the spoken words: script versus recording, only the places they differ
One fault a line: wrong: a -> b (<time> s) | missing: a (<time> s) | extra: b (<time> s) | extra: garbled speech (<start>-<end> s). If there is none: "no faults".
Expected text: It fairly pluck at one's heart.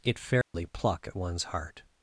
no faults